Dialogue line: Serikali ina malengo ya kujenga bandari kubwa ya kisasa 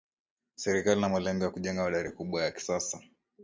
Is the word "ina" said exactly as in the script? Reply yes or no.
yes